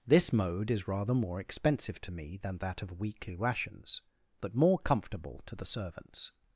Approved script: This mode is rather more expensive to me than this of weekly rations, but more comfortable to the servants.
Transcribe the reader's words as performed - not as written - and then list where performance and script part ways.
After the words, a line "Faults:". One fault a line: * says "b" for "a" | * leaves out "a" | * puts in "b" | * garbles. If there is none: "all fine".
This mode is rather more expensive to me than that of weekly rations, but more comfortable to the servants.
Faults:
* says "that" for "this"